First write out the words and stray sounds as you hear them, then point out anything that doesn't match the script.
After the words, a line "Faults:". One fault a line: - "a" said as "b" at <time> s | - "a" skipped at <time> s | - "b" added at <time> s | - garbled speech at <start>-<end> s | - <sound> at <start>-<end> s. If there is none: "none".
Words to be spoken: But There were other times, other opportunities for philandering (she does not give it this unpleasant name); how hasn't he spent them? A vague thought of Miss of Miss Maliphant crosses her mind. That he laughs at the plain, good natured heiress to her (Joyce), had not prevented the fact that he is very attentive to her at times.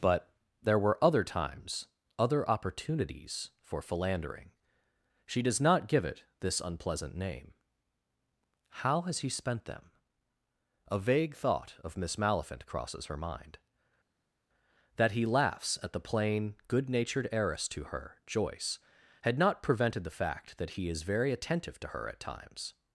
But There were other times, other opportunities for philandering (she does not give it this unpleasant name); how has he spent them? A vague thought of Miss Maliphant crosses her mind. That he laughs at the plain, good natured heiress to her (Joyce), had not prevented the fact that he is very attentive to her at times.
Faults:
- "hasn't" said as "has" at 9.0 s
- "of Miss" skipped at 12.2 s